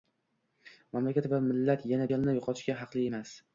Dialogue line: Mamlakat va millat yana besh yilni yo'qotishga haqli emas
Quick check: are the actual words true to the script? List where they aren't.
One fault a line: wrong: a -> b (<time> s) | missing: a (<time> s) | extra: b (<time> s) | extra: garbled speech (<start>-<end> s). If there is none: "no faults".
missing: besh (2.1 s)